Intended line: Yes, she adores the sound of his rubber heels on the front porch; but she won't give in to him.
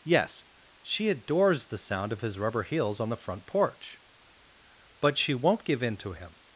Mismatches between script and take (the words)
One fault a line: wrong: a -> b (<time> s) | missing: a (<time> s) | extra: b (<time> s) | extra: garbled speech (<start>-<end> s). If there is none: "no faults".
no faults